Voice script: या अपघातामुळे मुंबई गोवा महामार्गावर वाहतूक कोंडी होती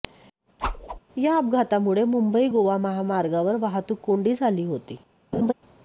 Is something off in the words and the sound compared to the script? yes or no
yes